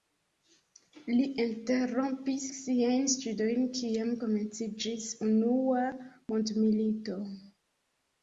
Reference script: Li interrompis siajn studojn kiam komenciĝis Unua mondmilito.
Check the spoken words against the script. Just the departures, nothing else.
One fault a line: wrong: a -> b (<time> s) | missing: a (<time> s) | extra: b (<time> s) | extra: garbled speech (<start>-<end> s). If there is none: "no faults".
no faults